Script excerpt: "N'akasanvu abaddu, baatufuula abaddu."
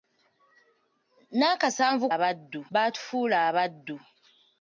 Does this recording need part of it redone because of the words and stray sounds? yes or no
no